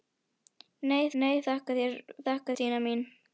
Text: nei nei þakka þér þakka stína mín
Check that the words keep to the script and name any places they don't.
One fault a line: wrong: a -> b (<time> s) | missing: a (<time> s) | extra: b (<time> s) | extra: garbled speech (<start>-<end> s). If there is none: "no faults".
no faults